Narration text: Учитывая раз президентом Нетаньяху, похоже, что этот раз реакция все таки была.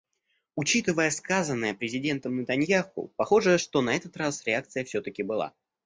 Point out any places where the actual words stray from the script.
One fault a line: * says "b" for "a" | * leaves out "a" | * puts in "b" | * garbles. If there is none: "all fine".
* says "сказанное" for "раз"
* puts in "на"